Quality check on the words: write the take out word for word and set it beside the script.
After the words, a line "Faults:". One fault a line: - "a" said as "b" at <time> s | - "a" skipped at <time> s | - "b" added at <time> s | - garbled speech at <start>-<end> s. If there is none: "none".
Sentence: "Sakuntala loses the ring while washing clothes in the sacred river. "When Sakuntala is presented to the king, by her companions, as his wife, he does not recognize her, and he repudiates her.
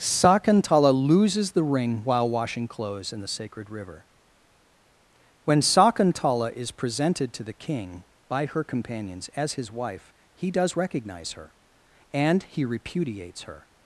"Sakuntala loses the ring while washing clothes in the sacred river. "When Sakuntala is presented to the king, by her companions, as his wife, he does recognize her, and he repudiates her.
Faults:
- "not" skipped at 10.8 s